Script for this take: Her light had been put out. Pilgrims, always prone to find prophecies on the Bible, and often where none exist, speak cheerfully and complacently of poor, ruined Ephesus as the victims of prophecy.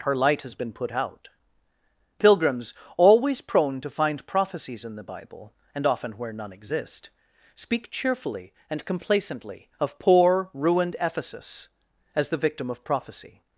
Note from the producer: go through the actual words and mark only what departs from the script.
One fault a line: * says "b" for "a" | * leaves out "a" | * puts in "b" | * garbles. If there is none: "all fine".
* says "has" for "had"
* says "in" for "on"
* says "victim" for "victims"